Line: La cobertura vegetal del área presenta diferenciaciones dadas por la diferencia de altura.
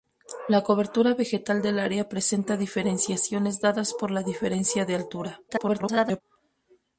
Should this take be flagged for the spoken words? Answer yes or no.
yes